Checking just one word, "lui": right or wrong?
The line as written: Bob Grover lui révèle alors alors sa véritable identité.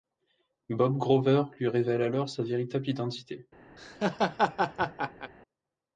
right